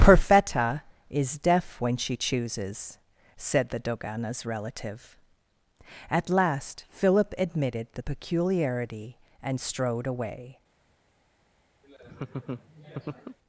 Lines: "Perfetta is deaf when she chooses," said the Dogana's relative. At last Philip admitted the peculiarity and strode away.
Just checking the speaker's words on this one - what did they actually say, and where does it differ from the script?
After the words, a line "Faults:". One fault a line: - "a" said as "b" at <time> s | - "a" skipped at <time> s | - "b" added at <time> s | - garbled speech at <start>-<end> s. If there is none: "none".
"Perfetta is deaf when she chooses," said the Dogana's relative. At last Philip admitted the peculiarity and strode away.
Faults:
none